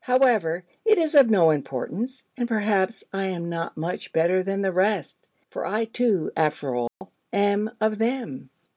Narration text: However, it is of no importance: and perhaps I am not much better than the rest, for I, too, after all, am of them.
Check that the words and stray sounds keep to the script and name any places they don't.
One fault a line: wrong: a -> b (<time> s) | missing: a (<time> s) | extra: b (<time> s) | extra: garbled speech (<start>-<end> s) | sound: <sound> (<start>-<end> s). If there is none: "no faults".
sound: dropout (6.9-7.0 s)